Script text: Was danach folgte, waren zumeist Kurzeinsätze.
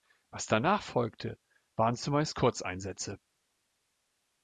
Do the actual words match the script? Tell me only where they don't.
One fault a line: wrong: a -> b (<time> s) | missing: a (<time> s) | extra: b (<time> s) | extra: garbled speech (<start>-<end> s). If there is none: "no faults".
no faults